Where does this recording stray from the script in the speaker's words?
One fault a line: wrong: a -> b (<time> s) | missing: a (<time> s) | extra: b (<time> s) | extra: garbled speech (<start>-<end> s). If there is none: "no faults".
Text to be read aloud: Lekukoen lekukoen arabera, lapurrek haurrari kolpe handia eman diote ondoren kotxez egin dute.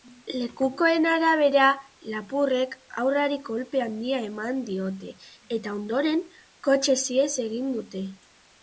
missing: lekukoen (1.0 s)
extra: eta (5.6 s)
extra: ihes (7.2 s)